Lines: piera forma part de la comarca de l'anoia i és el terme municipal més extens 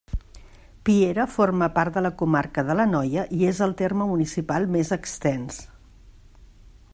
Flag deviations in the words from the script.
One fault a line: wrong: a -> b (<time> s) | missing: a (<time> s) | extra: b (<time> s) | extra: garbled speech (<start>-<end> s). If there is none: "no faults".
no faults